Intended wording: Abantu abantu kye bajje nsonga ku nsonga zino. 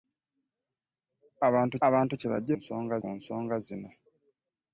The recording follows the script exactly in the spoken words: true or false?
true